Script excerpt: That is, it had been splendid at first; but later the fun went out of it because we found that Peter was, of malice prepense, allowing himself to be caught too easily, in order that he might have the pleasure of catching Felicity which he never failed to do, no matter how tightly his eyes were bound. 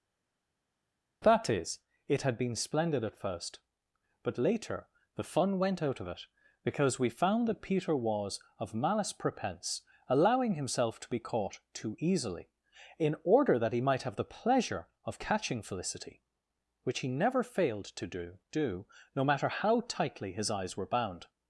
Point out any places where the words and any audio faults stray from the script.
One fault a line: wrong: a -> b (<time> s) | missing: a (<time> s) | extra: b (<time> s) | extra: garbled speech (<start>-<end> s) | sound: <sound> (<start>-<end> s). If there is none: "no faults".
extra: do (18.5 s)